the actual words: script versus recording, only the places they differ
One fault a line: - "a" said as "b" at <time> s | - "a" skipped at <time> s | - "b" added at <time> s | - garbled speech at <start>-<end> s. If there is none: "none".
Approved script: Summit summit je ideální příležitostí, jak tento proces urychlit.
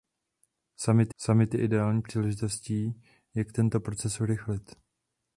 none